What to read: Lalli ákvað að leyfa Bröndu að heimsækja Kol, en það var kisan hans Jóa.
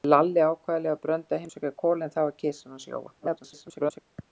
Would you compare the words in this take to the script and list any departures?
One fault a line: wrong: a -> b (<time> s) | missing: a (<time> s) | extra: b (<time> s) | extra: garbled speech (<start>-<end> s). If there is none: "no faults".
extra: garbled speech (3.2-4.0 s)